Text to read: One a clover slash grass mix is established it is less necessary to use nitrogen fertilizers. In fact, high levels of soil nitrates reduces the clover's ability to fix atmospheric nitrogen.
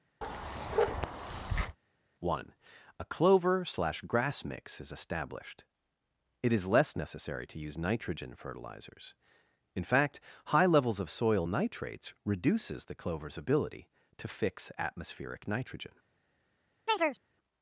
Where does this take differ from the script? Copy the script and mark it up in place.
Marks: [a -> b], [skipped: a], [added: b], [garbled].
One a clover slash grass mix is established it is less necessary to use nitrogen fertilizers. In fact, high levels of soil nitrates reduces the clover's ability to fix atmospheric nitrogen.